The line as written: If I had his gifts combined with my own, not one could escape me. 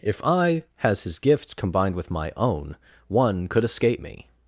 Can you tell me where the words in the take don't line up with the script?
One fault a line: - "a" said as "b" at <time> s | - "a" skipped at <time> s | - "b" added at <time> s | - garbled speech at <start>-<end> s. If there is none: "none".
- "had" said as "has" at 0.8 s
- "not" skipped at 2.8 s